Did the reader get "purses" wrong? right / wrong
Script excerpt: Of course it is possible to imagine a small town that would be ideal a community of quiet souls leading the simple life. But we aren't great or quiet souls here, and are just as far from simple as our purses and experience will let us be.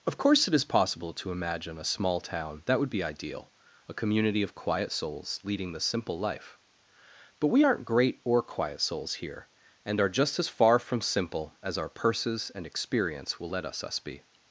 right